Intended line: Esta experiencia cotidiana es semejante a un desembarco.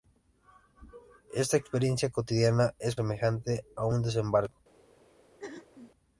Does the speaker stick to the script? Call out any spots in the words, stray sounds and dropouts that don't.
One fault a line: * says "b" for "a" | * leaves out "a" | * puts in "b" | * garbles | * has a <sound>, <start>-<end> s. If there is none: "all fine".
* has a throat clearing, 5.4-5.9 s